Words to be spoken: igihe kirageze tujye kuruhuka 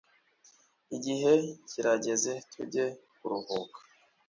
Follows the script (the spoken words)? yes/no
yes